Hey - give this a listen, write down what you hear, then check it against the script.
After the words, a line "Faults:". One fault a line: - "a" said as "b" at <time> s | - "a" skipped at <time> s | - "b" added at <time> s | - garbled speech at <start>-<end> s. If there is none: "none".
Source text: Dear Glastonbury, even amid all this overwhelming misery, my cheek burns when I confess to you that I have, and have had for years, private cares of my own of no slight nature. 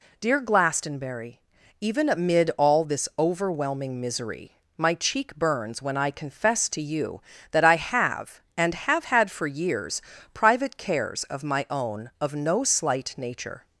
Dear Glastonbury, even amid all this overwhelming misery, my cheek burns when I confess to you that I have, and have had for years, private cares of my own of no slight nature.
Faults:
none